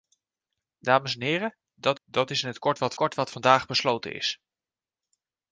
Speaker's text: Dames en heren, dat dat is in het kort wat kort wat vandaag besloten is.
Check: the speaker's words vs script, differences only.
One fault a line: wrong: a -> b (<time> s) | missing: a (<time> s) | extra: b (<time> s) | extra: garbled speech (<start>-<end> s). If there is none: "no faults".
no faults